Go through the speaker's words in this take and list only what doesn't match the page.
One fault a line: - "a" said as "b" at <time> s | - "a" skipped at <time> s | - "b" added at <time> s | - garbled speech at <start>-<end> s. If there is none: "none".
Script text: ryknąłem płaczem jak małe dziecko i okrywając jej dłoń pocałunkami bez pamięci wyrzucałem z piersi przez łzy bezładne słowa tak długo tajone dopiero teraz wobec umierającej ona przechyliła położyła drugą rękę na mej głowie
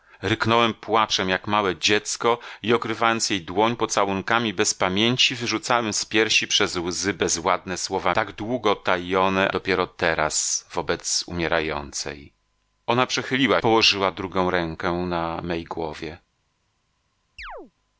none